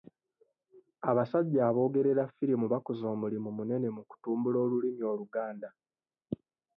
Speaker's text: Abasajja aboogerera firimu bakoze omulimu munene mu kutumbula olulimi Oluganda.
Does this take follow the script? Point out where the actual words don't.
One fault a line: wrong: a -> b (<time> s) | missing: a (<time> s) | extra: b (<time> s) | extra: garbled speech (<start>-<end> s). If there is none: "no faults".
no faults